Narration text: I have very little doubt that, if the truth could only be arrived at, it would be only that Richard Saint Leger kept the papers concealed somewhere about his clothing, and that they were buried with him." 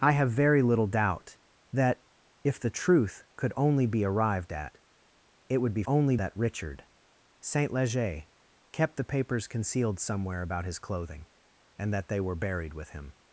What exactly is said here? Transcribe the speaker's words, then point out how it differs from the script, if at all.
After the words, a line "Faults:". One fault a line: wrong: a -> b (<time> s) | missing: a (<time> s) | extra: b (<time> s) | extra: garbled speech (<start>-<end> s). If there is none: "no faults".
I have very little doubt that, if the truth could only be arrived at, it would be only that Richard Saint Leger kept the papers concealed somewhere about his clothing, and that they were buried with him."
Faults:
no faults